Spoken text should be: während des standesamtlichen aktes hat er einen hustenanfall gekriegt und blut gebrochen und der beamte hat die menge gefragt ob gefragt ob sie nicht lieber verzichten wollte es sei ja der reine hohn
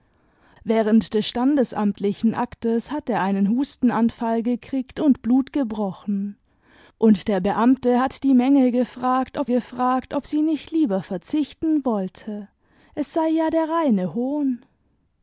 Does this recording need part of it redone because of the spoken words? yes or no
no